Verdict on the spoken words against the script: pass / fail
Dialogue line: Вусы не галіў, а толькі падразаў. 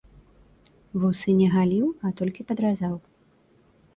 pass